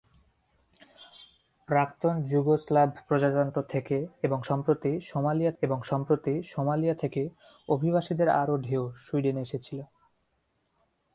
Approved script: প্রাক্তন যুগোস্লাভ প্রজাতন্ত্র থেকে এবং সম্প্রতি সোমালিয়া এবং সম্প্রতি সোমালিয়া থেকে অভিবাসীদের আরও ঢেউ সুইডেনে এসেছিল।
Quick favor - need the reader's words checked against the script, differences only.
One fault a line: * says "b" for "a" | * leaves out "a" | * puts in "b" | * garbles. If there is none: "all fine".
all fine